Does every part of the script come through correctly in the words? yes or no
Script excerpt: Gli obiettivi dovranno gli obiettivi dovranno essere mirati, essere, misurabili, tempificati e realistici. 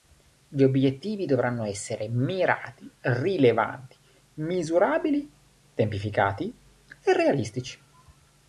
no